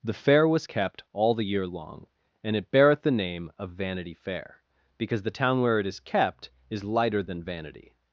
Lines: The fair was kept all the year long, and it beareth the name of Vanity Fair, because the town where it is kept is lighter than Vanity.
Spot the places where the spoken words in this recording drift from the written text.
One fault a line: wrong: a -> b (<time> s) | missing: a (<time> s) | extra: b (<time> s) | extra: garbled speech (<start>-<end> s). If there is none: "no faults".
no faults